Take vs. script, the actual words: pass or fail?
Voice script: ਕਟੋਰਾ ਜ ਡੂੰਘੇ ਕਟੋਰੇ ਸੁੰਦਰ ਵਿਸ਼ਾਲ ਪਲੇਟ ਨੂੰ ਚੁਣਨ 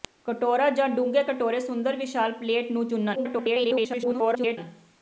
fail